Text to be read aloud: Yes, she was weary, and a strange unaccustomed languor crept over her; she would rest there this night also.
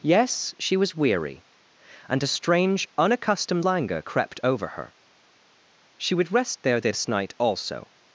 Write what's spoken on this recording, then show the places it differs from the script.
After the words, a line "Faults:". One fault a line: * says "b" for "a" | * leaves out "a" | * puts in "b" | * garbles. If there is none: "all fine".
Yes, she was weary, and a strange unaccustomed languor crept over her; she would rest there this night also.
Faults:
all fine